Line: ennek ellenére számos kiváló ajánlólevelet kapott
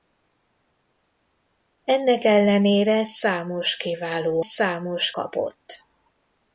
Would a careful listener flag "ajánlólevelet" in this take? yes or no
yes